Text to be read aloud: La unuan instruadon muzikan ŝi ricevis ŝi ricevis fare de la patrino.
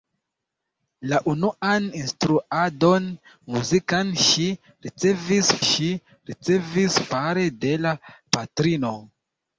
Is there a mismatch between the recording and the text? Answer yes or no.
no